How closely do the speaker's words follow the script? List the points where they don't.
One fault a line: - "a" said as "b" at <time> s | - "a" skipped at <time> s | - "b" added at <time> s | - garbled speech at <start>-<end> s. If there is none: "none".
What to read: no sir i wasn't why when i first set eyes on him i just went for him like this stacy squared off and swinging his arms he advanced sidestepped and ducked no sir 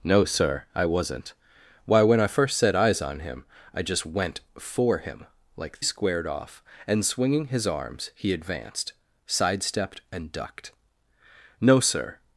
- "this stacy" skipped at 5.8 s